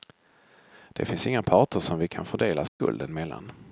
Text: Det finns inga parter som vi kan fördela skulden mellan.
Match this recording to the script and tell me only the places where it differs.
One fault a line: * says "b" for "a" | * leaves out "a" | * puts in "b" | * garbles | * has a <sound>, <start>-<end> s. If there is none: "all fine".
* has a dropout, 2.7-2.8 s